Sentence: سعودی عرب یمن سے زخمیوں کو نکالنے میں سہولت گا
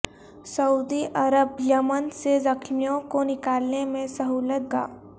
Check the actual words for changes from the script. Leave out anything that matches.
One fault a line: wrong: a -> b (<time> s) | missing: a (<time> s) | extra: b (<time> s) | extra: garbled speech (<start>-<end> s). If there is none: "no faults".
no faults